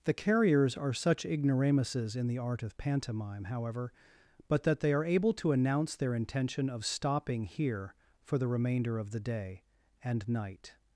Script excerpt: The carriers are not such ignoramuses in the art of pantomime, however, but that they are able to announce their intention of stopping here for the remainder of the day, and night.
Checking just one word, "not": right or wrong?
wrong